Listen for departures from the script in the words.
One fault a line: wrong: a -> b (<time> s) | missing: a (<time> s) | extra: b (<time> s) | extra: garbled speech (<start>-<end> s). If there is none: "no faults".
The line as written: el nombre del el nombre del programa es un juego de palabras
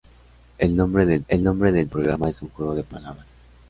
no faults